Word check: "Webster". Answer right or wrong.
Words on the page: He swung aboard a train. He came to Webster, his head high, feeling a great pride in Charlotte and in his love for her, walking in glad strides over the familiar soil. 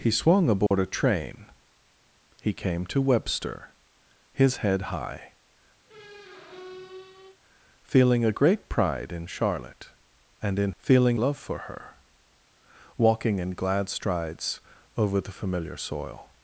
right